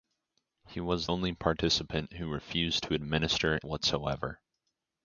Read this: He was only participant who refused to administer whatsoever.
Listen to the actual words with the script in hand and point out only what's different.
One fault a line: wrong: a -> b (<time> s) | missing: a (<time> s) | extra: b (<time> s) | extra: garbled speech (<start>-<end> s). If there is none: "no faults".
no faults